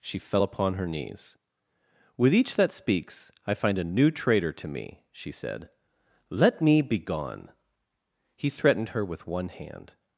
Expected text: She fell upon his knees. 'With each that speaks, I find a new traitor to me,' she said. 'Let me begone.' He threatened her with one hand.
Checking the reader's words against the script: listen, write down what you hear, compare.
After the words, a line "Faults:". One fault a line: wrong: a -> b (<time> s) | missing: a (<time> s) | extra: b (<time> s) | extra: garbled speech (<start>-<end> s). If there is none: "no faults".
She fell upon her knees. 'With each that speaks, I find a new traitor to me,' she said. 'Let me begone.' He threatened her with one hand.
Faults:
wrong: his -> her (0.7 s)